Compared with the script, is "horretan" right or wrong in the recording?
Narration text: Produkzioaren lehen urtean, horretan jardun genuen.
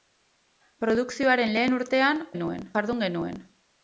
wrong